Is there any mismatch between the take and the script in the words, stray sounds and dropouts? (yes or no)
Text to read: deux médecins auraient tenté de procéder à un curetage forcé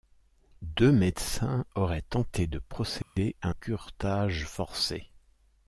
yes